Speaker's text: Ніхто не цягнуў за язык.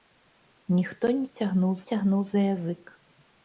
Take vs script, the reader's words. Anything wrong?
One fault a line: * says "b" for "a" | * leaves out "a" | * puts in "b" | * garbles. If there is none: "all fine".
* puts in "цягнуў"